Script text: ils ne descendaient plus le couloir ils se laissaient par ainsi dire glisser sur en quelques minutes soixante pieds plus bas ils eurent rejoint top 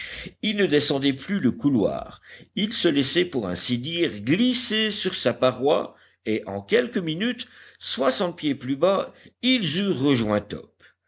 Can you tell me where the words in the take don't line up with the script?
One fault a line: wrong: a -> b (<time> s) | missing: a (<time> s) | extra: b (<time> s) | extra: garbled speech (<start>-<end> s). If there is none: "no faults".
wrong: par -> pour (3.2 s)
extra: sa paroi et (5.1 s)